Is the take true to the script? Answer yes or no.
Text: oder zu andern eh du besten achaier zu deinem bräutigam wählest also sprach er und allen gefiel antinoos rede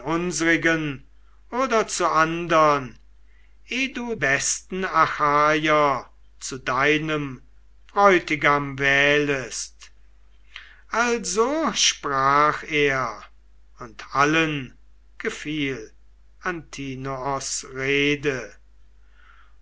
yes